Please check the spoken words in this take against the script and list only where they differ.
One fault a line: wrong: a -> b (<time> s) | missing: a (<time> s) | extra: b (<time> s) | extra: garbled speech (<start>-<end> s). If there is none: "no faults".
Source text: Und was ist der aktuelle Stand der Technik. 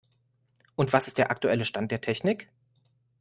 no faults